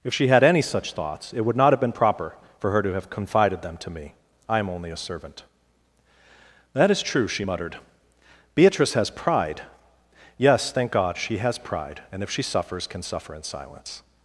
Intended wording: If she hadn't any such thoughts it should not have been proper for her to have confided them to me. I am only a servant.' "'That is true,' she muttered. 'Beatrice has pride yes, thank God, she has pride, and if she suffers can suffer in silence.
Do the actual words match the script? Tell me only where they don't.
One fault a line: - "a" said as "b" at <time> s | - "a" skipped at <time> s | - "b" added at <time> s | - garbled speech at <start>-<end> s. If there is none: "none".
- "hadn't" said as "had" at 0.3 s
- "should" said as "would" at 1.4 s